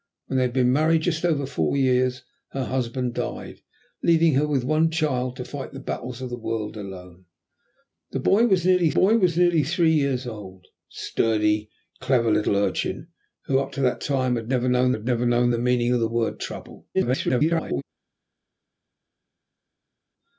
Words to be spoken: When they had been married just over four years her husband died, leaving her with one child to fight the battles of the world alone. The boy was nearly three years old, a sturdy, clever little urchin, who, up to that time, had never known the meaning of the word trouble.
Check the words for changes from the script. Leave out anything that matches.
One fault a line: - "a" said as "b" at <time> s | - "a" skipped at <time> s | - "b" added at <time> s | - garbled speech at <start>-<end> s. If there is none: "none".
- "boy was nearly" added at 8.9 s
- "had never known" added at 14.9 s
- garbled speech at 16.9-17.8 s